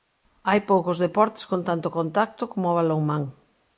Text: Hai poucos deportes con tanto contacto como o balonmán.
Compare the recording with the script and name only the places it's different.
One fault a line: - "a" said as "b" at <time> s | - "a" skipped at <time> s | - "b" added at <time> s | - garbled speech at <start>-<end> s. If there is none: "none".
none